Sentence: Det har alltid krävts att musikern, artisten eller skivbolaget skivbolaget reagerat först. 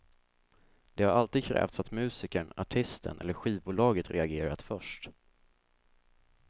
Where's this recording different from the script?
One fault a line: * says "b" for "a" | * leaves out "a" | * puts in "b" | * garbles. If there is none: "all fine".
* leaves out "skivbolaget"